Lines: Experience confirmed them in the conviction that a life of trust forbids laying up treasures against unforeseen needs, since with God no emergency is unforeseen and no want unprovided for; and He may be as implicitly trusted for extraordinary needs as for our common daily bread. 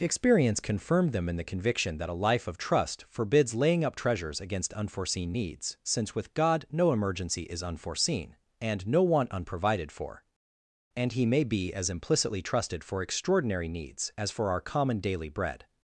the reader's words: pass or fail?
pass